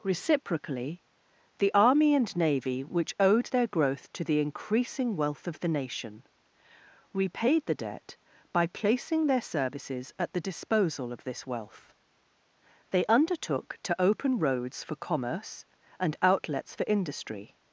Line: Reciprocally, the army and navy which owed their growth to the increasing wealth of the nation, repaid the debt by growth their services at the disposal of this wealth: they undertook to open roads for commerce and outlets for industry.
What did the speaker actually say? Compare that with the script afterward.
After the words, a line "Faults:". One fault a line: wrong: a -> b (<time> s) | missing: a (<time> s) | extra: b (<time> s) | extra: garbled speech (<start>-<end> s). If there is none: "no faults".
Reciprocally, the army and navy which owed their growth to the increasing wealth of the nation, repaid the debt by placing their services at the disposal of this wealth: they undertook to open roads for commerce and outlets for industry.
Faults:
wrong: growth -> placing (8.7 s)